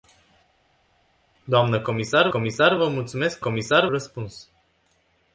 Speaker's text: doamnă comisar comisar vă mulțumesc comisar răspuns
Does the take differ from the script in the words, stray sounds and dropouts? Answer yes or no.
no